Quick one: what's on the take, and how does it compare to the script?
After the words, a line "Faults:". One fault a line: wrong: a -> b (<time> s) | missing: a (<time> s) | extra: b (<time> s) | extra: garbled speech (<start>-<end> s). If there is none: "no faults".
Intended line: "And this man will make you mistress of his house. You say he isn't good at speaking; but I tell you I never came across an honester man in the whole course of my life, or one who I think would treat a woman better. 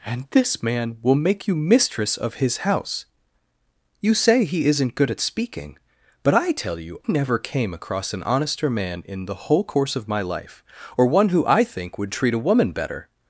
"And this man will make you mistress of his house. You say he isn't good at speaking; but I tell you never came across an honester man in the whole course of my life, or one who I think would treat a woman better.
Faults:
missing: I (7.0 s)